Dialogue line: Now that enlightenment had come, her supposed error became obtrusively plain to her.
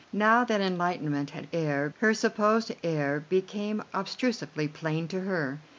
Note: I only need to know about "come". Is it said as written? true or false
false